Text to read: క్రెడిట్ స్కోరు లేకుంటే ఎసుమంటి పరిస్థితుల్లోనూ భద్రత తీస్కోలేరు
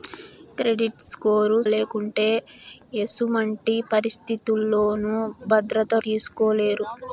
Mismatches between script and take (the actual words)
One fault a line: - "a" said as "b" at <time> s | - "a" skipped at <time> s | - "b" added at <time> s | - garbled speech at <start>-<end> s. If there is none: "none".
none